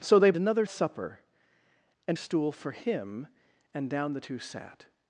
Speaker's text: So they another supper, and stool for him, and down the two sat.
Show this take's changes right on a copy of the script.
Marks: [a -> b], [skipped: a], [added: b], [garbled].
So they another supper, and stool for him, and down the two sat.